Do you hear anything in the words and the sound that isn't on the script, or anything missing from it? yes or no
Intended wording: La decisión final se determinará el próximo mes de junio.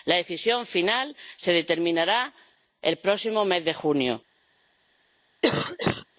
yes